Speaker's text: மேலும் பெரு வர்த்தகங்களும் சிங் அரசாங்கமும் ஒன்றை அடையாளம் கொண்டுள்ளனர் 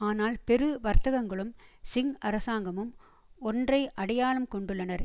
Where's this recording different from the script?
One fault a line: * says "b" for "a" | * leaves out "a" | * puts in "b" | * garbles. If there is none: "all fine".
* says "ஆனால்" for "மேலும்"